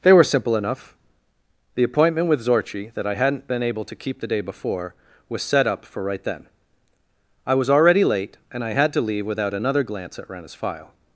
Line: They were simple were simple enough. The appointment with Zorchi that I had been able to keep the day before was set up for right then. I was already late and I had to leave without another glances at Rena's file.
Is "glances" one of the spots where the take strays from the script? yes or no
yes